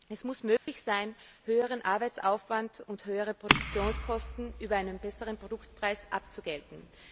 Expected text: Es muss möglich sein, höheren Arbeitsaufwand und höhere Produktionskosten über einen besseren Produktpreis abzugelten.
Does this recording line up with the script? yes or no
yes